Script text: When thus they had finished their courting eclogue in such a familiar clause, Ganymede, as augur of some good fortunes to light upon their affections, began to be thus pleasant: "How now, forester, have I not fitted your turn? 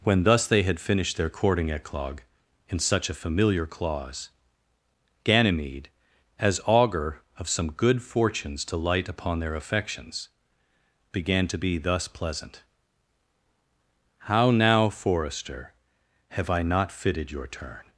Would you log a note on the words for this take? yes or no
no